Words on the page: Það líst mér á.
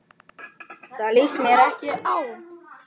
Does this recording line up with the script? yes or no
no